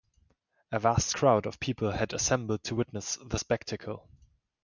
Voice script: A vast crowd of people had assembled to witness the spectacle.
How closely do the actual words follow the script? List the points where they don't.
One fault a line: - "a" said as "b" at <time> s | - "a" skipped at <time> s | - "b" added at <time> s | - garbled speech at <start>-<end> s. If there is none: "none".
none